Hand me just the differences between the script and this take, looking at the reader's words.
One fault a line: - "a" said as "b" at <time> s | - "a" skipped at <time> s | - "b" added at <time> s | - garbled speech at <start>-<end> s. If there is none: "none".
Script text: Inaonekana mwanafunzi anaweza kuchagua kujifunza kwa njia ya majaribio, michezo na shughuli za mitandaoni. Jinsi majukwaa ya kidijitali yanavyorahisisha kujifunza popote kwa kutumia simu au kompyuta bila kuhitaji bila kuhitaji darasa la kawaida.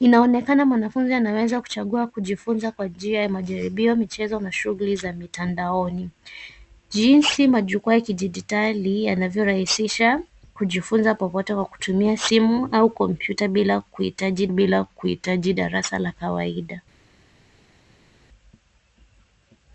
none